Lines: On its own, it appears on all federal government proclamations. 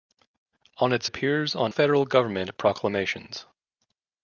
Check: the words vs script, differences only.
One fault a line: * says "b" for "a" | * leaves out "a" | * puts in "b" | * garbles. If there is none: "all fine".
* leaves out "own it"
* leaves out "all"